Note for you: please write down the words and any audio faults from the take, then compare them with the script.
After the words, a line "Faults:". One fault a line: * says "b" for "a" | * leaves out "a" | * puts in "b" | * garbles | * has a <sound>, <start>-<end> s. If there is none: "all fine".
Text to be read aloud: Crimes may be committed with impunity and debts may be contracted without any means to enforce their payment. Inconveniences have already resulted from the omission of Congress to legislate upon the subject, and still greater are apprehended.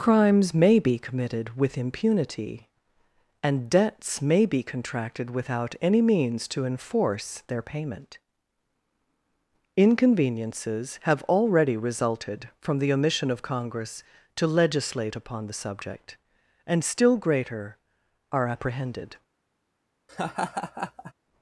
Crimes may be committed with impunity and debts may be contracted without any means to enforce their payment. Inconveniences have already resulted from the omission of Congress to legislate upon the subject, and still greater are apprehended.
Faults:
* has a laugh, 20.1-21.1 s